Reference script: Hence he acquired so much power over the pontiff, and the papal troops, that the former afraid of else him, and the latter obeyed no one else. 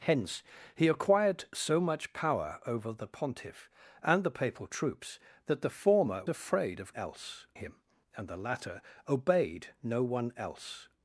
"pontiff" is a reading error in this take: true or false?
false